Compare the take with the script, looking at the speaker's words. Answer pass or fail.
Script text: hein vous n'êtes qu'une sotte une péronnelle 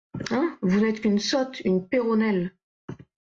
pass